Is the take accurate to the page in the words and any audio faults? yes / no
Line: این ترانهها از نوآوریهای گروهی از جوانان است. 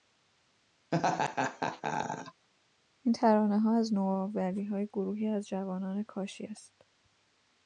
no